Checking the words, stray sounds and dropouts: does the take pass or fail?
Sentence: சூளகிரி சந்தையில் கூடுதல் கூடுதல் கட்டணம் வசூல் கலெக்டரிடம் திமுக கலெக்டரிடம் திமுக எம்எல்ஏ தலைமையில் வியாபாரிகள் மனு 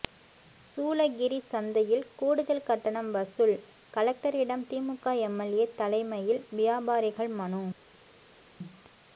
fail